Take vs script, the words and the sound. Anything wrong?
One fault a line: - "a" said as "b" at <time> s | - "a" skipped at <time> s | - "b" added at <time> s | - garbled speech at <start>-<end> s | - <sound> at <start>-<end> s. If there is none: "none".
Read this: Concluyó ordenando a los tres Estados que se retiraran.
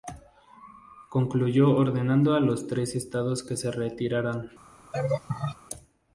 - laugh at 4.9-5.6 s